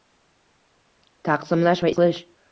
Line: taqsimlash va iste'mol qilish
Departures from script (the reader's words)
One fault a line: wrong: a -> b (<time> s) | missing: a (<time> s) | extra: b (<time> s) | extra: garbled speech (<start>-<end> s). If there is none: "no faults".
missing: iste'mol (1.9 s)